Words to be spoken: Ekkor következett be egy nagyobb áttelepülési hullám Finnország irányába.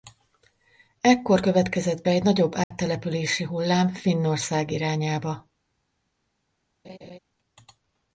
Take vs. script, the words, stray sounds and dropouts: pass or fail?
fail